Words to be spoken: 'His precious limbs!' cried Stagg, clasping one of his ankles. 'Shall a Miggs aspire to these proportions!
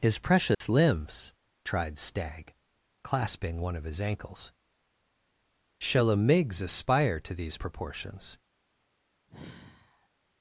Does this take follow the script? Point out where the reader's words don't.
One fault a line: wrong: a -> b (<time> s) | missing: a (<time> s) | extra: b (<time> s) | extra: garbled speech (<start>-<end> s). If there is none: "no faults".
wrong: cried -> tried (1.6 s)